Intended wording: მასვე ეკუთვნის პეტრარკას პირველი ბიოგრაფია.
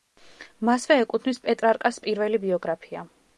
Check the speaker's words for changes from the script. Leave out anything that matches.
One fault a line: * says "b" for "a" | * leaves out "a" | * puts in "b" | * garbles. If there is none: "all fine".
all fine